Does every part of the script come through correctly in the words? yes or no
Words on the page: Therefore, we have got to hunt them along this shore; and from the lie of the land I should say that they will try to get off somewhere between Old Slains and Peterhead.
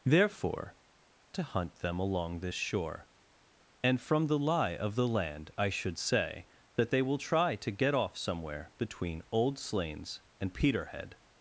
no